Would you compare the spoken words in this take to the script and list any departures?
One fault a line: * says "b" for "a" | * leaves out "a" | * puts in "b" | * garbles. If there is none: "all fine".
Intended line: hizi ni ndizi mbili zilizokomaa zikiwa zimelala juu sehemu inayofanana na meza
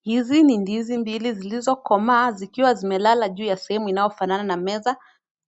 * puts in "ya"